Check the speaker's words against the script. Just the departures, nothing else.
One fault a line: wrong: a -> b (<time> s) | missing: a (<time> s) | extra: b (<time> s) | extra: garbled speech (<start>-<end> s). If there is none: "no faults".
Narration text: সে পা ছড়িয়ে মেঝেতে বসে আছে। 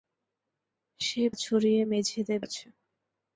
missing: পা (1.2 s)
missing: বসে (2.4 s)